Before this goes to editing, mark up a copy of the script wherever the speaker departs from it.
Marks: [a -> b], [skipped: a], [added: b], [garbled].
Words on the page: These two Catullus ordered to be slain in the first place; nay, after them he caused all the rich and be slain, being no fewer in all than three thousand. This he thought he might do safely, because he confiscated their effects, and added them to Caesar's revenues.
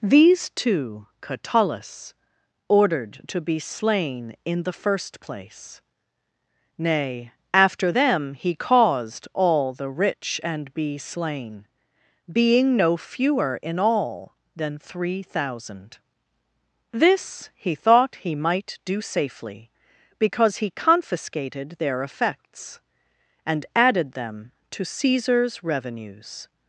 These two Catullus ordered to be slain in the first place; nay, after them he caused all the rich and be slain, being no fewer in all than three thousand. This he thought he might do safely, because he confiscated their effects, and added them to Caesar's revenues.